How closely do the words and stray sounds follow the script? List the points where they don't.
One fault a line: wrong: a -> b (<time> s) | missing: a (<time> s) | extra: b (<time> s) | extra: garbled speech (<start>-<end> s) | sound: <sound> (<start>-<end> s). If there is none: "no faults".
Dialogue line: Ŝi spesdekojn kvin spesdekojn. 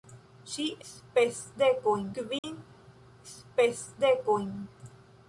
sound: dropout (2.4-2.4 s)